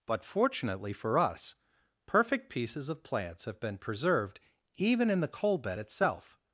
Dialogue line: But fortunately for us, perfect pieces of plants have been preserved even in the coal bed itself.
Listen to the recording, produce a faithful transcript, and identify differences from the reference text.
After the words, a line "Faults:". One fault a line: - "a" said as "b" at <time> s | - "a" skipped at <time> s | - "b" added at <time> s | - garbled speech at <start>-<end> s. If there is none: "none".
But fortunately for us, perfect pieces of plants have been preserved even in the coal bed itself.
Faults:
none